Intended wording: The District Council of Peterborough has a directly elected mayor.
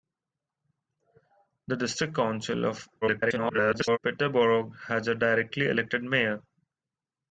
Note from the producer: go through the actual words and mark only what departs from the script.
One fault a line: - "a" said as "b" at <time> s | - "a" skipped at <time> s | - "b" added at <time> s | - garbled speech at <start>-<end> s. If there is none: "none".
- garbled speech at 3.0-4.0 s